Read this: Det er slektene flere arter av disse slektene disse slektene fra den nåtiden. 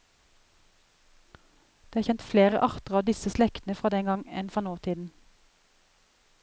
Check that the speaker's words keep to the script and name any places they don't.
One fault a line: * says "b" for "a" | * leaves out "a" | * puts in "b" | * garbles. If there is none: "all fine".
* says "kjent" for "slektene"
* says "fra den gang enn" for "disse slektene"
* leaves out "den"